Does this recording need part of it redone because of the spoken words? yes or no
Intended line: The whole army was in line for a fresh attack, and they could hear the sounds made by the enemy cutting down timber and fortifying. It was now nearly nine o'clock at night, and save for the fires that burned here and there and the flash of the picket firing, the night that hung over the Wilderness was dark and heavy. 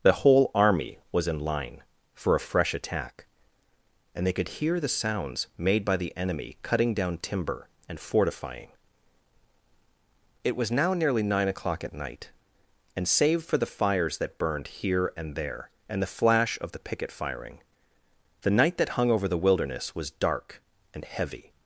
no